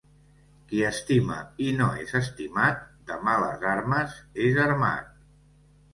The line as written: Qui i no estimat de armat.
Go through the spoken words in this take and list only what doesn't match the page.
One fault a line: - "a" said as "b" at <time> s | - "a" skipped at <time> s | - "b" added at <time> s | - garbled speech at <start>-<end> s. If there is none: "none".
- "estima" added at 0.9 s
- "és" added at 2.0 s
- "males armes és" added at 3.3 s